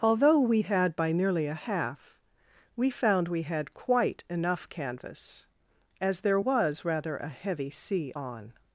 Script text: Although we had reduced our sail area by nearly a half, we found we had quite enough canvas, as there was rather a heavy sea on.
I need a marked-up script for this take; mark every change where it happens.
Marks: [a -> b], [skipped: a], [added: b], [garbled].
Although we had [skipped: reduced our sail area] by nearly a half, we found we had quite enough canvas, as there was rather a heavy sea on.